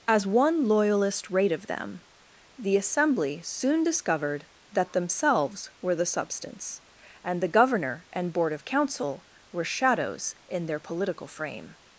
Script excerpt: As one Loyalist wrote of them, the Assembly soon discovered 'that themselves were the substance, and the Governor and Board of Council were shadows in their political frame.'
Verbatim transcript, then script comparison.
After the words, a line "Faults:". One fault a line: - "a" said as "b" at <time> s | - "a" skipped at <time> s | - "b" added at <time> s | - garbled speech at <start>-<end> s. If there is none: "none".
As one Loyalist rate of them, the Assembly soon discovered 'that themselves were the substance, and the Governor and Board of Council were shadows in their political frame.'
Faults:
- "wrote" said as "rate" at 1.3 s